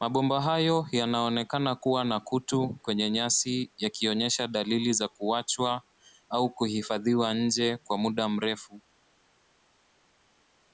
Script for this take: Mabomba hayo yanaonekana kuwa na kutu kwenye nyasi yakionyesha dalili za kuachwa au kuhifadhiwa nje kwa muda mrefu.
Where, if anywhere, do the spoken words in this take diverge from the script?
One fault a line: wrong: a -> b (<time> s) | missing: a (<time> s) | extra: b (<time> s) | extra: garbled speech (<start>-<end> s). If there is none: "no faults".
no faults